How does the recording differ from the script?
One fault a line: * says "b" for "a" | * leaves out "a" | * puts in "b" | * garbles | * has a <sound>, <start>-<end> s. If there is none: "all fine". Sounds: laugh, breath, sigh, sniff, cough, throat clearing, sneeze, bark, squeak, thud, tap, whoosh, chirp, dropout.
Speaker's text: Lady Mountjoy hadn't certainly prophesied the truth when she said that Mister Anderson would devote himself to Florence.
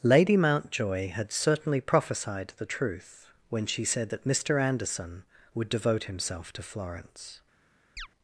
* says "had" for "hadn't"
* has a chirp, 8.0-8.1 s